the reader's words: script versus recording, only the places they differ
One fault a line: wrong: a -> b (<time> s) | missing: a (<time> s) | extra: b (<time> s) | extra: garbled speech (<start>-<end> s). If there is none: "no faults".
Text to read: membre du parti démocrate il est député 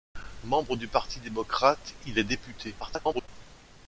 extra: garbled speech (2.8-3.3 s)